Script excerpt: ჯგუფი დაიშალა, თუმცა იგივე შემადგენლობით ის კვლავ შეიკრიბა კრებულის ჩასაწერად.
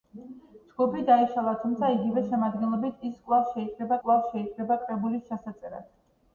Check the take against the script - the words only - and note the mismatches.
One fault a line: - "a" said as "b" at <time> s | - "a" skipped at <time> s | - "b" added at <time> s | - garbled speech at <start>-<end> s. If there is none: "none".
- "კვლავ შეიკრიბა" added at 4.1 s